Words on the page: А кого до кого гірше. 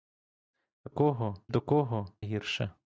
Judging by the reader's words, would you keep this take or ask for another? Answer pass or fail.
pass